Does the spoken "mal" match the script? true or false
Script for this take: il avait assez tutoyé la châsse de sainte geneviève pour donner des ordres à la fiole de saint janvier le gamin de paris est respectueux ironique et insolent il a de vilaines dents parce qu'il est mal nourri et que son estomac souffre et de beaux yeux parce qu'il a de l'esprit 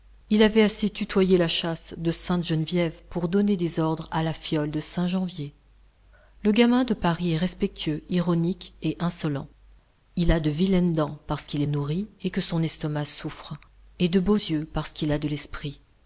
false